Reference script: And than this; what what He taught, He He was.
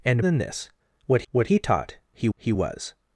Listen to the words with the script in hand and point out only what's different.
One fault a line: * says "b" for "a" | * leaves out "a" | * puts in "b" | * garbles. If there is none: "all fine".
all fine